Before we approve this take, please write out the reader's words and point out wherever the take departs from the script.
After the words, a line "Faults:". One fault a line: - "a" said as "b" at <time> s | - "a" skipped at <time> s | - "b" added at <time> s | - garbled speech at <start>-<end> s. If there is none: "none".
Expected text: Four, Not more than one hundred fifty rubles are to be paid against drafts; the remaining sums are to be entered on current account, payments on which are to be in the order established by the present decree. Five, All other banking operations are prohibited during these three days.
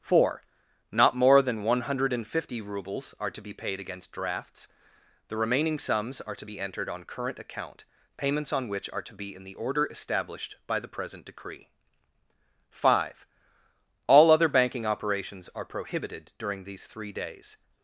Four, Not more than one hundred fifty rubles are to be paid against drafts; the remaining sums are to be entered on current account, payments on which are to be in the order established by the present decree. Five, All other banking operations are prohibited during these three days.
Faults:
none